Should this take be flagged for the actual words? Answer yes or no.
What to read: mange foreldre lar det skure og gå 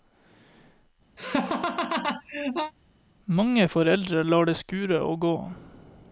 no